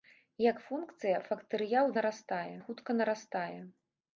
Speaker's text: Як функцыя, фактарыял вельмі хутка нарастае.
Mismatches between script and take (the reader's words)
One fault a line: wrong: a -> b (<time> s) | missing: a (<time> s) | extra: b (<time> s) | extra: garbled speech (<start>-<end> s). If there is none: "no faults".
wrong: вельмі -> нарастае (2.0 s)